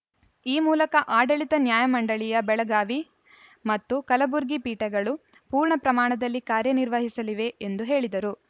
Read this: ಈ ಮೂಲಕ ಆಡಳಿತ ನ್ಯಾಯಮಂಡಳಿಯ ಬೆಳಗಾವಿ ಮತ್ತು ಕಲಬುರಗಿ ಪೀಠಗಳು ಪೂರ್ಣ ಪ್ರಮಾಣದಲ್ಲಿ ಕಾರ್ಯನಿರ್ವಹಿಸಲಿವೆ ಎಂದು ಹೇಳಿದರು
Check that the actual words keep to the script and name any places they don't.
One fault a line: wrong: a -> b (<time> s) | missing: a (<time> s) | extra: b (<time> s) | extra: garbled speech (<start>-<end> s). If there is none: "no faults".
no faults